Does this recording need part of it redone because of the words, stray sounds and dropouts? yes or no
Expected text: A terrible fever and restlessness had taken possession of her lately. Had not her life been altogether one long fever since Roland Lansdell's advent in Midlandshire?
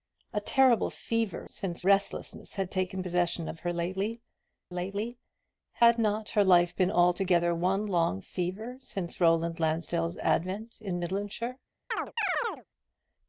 yes